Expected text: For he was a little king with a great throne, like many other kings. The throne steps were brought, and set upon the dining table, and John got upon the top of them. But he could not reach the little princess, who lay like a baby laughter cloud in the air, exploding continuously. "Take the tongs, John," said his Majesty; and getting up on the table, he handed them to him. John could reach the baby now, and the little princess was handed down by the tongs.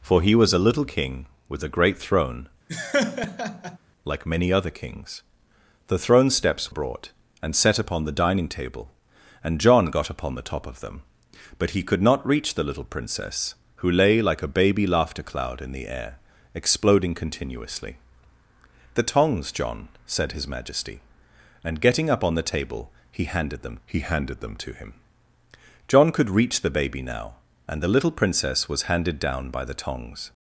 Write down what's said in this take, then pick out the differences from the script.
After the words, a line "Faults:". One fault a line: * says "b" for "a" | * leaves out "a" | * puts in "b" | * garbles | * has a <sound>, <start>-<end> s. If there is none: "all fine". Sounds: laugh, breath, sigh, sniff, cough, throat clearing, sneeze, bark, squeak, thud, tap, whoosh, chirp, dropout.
For he was a little king with a great throne, like many other kings. The throne steps brought, and set upon the dining table, and John got upon the top of them. But he could not reach the little princess, who lay like a baby laughter cloud in the air, exploding continuously. "The tongs, John," said his Majesty; and getting up on the table, he handed them he handed them to him. John could reach the baby now, and the little princess was handed down by the tongs.
Faults:
* has a laugh, 2.7-3.8 s
* leaves out "were"
* leaves out "Take"
* puts in "he handed them"